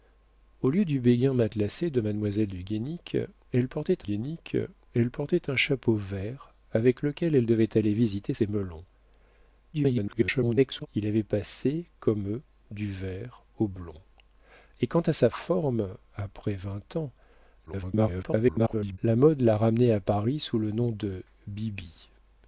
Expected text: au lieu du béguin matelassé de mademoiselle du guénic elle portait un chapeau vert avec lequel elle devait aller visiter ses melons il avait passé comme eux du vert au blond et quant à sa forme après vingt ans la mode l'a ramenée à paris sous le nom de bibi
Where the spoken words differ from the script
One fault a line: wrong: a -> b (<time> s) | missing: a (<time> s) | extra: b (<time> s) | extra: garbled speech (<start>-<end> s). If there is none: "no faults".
extra: guénic elle portait (4.0 s)
extra: garbled speech (9.7-10.9 s)
extra: garbled speech (17.7-19.0 s)